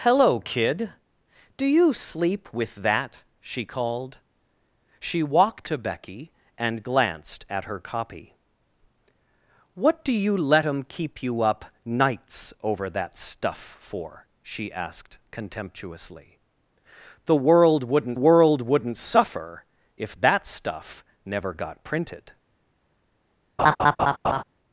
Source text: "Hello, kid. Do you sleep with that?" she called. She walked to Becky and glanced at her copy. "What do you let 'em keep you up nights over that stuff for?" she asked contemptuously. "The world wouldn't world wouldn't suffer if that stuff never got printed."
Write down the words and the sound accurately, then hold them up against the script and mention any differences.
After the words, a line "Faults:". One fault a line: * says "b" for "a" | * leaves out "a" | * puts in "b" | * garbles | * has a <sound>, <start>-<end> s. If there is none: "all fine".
"Hello, kid. Do you sleep with that?" she called. She walked to Becky and glanced at her copy. "What do you let 'em keep you up nights over that stuff for?" she asked contemptuously. "The world wouldn't world wouldn't suffer if that stuff never got printed."
Faults:
* has a laugh, 23.6-24.4 s